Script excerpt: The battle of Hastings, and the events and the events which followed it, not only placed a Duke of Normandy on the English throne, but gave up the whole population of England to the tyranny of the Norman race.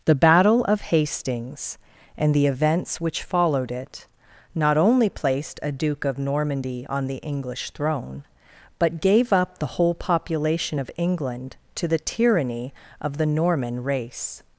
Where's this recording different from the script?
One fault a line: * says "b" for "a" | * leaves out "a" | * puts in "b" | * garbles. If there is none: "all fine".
* leaves out "and the events"